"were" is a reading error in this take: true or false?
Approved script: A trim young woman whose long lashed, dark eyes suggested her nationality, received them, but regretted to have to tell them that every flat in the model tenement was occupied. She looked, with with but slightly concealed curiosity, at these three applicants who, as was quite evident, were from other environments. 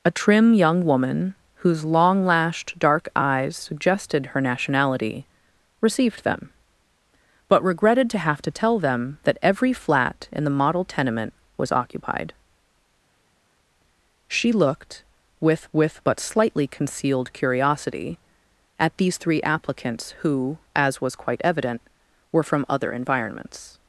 false